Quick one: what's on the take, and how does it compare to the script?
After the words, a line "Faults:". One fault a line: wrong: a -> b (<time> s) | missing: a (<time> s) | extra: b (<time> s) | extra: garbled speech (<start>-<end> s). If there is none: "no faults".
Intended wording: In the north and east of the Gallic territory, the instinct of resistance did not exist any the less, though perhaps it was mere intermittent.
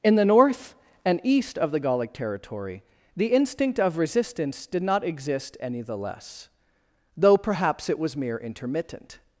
In the north and east of the Gallic territory, the instinct of resistance did not exist any the less, though perhaps it was mere intermittent.
Faults:
no faults